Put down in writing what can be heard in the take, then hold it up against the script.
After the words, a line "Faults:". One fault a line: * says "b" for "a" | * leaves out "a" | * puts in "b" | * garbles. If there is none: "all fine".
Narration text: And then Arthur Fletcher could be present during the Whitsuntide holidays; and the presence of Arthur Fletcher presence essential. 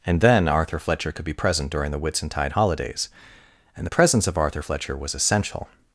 And then Arthur Fletcher could be present during the Whitsuntide holidays; and the presence of Arthur Fletcher was essential.
Faults:
* says "was" for "presence"